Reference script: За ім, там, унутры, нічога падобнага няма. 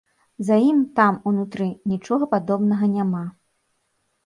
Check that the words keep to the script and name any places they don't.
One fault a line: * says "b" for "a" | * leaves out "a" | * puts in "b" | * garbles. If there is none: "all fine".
all fine